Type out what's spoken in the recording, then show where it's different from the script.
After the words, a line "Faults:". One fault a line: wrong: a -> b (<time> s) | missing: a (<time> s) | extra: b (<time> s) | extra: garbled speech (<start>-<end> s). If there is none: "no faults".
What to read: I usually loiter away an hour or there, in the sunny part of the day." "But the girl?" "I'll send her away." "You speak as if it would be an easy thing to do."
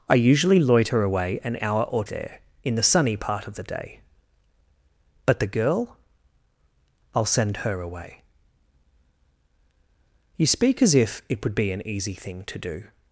I usually loiter away an hour or there, in the sunny part of the day." "But the girl?" "I'll send her away." "You speak as if it would be an easy thing to do."
Faults:
no faults